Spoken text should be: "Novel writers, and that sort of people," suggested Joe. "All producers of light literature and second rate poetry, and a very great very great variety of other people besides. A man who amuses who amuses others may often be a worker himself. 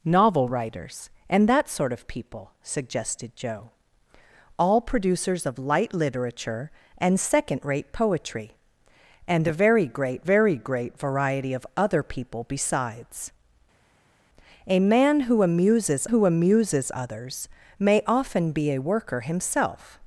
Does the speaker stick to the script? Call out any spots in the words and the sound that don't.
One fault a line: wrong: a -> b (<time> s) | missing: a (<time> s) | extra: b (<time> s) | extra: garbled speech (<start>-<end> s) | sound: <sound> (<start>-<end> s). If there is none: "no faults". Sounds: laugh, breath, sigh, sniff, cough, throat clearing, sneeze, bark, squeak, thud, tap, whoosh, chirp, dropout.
no faults